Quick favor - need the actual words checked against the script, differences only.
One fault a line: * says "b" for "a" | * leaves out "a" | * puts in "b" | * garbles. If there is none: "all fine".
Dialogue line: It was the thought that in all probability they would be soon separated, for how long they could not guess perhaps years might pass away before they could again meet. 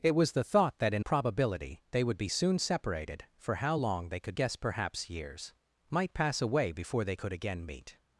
* leaves out "all"
* leaves out "not"